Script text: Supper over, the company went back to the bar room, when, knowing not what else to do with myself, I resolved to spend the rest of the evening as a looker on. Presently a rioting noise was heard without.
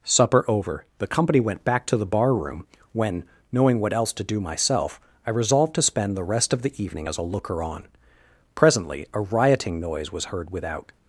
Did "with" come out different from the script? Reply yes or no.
yes